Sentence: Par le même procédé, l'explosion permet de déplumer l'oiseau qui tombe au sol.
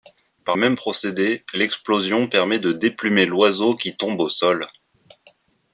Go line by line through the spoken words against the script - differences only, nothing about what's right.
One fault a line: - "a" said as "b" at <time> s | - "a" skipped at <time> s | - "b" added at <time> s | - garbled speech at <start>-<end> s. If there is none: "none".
- "le" skipped at 0.6 s